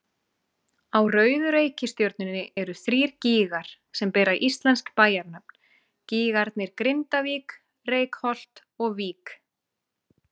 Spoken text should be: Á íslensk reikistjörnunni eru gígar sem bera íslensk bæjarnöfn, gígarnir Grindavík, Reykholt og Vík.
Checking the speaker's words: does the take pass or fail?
fail